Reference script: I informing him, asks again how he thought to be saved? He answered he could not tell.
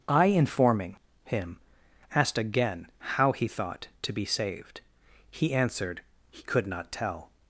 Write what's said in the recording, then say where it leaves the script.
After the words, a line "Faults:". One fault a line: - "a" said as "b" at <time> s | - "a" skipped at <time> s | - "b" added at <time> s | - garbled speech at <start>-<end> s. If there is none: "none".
I informing him, asked again how he thought to be saved? He answered he could not tell.
Faults:
- "asks" said as "asked" at 2.1 s